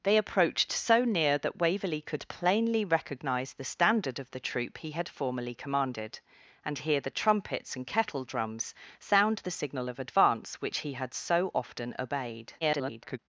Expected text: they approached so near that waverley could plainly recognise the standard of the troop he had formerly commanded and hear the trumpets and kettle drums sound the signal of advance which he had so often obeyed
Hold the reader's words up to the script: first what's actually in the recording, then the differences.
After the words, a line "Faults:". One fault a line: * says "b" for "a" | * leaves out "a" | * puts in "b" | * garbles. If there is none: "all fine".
they approached so near that waverley could plainly recognise the standard of the troop he had formerly commanded and hear the trumpets and kettle drums sound the signal of advance which he had so often obeyed [garbled]
Faults:
* garbles